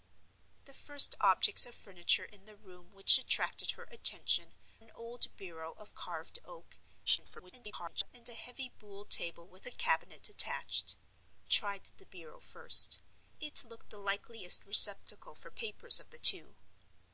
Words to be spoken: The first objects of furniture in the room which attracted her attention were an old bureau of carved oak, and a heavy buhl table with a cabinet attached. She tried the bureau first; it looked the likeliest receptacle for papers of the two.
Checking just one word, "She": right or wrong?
wrong